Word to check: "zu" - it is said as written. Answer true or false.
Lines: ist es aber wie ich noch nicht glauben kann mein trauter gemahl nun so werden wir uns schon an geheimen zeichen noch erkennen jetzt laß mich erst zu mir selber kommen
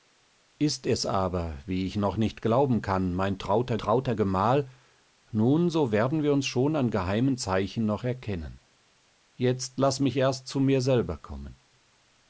true